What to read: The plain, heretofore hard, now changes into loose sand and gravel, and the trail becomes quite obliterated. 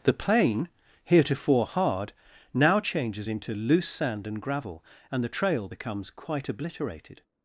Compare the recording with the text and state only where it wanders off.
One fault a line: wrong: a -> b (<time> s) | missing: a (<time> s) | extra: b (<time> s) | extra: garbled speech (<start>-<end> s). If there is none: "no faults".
no faults